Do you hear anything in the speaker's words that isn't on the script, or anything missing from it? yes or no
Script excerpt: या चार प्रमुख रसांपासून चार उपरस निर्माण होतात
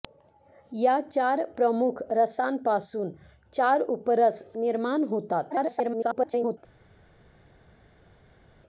yes